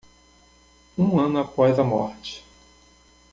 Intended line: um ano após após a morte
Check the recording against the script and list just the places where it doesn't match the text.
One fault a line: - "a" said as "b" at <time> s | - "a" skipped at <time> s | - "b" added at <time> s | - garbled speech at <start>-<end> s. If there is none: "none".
- "após" skipped at 1.8 s